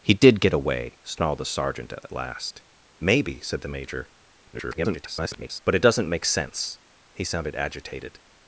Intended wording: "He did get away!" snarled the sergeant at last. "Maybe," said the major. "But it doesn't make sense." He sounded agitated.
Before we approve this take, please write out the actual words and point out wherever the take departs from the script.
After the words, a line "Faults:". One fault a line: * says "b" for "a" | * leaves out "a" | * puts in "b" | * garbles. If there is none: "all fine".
"He did get away!" snarled the sergeant at at last. "Maybe," said the major. [garbled] "But it doesn't make sense." He sounded agitated.
Faults:
* puts in "at"
* garbles